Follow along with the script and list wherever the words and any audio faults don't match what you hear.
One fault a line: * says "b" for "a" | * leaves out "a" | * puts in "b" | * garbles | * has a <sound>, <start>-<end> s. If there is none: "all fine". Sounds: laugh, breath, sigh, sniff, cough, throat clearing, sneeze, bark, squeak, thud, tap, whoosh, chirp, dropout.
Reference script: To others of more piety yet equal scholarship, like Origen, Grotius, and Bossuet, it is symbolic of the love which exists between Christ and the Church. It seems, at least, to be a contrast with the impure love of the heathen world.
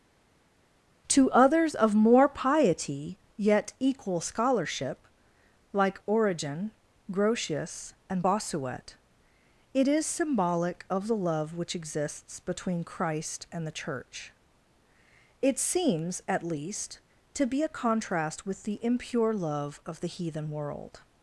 all fine